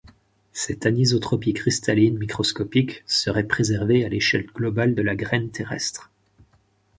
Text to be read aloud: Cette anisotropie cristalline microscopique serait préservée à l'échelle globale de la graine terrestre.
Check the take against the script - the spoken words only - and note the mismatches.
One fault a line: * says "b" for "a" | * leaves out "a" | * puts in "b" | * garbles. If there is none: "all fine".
all fine